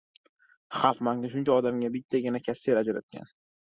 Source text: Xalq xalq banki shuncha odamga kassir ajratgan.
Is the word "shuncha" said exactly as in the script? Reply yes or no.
yes